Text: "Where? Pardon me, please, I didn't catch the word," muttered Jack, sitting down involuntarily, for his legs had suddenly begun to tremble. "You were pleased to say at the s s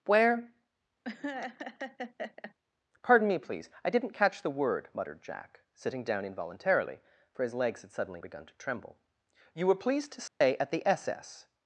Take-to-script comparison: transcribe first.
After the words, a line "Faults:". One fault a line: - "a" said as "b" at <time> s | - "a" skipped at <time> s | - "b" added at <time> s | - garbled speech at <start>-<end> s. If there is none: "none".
"Where? Pardon me, please, I didn't catch the word," muttered Jack, sitting down involuntarily, for his legs had suddenly begun to tremble. "You were pleased to say at the s s
Faults:
none